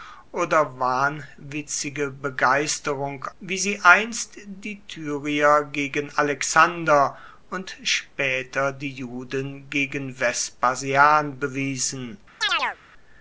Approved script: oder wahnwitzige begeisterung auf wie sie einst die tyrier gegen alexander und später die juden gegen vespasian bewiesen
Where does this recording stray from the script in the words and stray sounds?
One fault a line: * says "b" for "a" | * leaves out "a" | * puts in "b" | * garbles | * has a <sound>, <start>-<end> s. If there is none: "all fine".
* leaves out "auf"
* has a chirp, 12.4-12.8 s